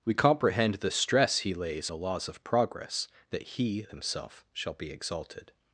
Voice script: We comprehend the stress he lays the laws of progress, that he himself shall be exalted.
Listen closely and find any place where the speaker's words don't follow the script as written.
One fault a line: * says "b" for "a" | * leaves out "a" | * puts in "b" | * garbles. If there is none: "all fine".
all fine